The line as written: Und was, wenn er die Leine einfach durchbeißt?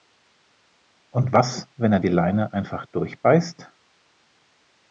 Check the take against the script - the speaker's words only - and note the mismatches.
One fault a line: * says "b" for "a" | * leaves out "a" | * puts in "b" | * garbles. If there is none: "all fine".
all fine